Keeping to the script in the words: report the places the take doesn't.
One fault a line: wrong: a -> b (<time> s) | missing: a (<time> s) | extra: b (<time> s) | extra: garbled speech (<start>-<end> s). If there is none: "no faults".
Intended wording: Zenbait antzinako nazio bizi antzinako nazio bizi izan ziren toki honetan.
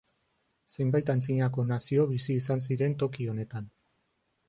missing: antzinako nazio bizi (2.4 s)